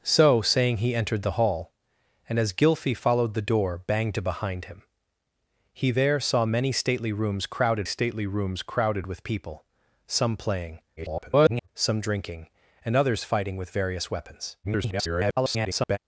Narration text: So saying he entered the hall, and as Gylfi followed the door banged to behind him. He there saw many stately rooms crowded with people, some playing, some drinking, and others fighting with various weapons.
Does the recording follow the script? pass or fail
fail